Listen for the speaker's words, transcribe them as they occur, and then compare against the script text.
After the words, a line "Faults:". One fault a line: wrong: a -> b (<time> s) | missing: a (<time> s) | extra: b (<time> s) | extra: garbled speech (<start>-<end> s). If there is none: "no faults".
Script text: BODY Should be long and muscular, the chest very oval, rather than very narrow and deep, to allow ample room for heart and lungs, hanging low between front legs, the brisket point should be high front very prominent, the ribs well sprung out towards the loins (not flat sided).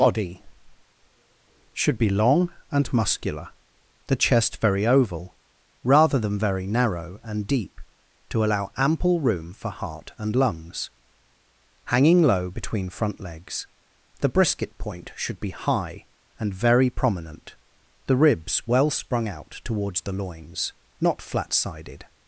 BODY Should be long and muscular, the chest very oval, rather than very narrow and deep, to allow ample room for heart and lungs, hanging low between front legs, the brisket point should be high and very prominent, the ribs well sprung out towards the loins (not flat sided).
Faults:
wrong: front -> and (16.4 s)